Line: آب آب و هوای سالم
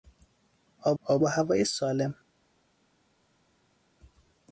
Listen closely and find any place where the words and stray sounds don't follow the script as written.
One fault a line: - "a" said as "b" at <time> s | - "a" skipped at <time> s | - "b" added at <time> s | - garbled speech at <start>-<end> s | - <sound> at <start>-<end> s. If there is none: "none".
none